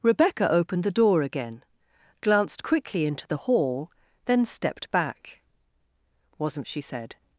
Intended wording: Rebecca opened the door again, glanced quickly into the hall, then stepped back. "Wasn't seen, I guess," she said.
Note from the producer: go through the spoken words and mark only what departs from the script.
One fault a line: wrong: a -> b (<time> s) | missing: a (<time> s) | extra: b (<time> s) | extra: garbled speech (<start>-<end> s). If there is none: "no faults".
missing: seen I guess (6.7 s)